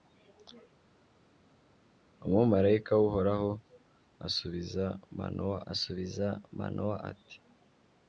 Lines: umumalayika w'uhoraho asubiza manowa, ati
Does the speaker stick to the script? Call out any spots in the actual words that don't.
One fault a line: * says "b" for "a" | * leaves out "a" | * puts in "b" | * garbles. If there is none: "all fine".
* puts in "asubiza manowa"